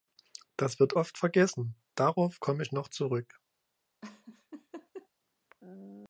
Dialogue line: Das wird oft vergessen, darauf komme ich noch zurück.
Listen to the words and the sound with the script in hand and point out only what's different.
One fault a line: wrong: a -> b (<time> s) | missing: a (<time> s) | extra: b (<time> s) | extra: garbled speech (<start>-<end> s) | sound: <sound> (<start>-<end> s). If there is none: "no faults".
sound: laugh (4.0-5.1 s)